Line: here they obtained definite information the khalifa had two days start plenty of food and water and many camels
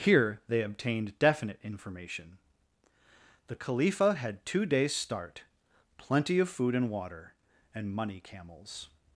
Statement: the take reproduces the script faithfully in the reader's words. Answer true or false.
false